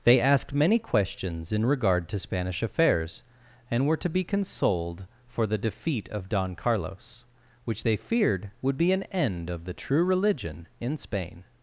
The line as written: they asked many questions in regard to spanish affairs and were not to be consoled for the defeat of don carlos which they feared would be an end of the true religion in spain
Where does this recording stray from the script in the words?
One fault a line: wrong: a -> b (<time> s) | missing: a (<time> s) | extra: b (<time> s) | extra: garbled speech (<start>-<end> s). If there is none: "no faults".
missing: not (4.0 s)